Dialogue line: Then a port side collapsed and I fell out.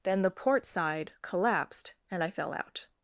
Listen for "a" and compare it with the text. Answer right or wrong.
wrong